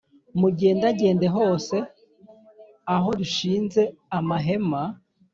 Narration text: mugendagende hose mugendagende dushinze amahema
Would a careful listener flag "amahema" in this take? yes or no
no